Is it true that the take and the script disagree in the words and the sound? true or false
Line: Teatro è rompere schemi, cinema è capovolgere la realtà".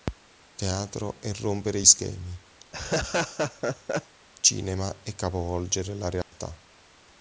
true